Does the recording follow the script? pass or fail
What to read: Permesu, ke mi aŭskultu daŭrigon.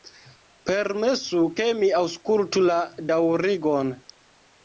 fail